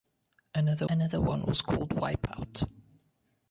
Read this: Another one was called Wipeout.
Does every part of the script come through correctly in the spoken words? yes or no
no